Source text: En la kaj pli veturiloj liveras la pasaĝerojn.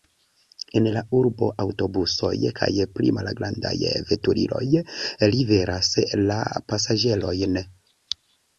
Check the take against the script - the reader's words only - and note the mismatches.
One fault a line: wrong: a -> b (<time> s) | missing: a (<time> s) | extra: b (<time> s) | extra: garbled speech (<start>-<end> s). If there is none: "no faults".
extra: urbo aŭtobusoj (1.2 s)
extra: malgrandaj (3.2 s)